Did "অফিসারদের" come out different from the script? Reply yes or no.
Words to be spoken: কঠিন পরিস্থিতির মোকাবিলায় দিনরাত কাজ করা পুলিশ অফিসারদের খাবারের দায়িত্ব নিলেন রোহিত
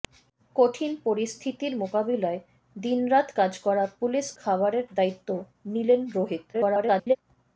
yes